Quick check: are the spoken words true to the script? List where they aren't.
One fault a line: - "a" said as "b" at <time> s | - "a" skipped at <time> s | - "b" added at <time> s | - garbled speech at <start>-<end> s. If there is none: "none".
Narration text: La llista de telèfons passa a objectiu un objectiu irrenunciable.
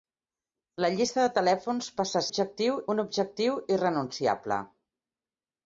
none